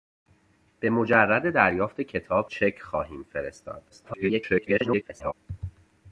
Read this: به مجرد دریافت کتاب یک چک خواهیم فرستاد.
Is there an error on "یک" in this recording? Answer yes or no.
yes